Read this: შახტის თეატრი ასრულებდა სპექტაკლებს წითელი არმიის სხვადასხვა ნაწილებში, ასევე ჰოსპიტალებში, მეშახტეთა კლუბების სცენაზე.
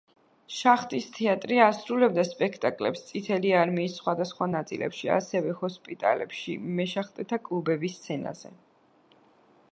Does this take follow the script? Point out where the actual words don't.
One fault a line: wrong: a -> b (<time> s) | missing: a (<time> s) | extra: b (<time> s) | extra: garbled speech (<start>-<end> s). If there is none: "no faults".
no faults